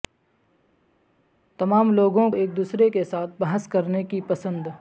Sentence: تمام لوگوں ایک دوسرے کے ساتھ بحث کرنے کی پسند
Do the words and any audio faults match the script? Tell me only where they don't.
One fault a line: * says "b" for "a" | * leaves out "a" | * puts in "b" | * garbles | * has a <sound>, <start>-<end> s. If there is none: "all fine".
all fine